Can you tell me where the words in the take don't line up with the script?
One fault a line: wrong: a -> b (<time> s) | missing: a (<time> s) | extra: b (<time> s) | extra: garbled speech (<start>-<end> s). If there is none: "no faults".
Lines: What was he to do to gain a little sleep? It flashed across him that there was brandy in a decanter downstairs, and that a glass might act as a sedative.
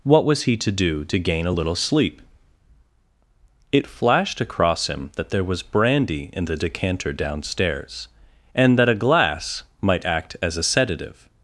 wrong: a -> the (6.5 s)